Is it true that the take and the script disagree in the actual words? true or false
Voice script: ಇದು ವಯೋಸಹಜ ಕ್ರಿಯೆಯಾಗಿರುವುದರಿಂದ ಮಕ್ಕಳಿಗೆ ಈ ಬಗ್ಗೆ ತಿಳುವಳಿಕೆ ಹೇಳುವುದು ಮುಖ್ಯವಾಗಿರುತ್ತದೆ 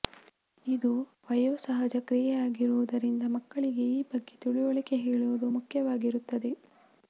false